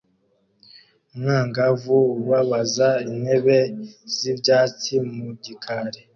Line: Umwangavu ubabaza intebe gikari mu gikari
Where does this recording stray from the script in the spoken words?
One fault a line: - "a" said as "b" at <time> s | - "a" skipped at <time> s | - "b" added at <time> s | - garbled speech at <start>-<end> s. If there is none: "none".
- "gikari" said as "z'ibyatsi" at 4.2 s